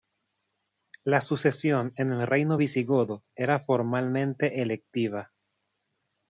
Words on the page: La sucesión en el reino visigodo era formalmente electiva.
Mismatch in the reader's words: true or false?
false